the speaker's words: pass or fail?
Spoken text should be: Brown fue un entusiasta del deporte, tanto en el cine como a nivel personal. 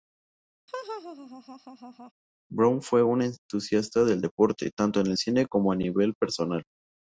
pass